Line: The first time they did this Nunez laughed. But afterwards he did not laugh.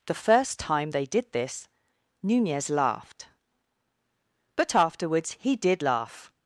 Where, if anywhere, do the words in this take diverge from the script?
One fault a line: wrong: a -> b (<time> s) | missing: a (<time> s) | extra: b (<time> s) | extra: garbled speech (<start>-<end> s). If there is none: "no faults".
missing: not (5.8 s)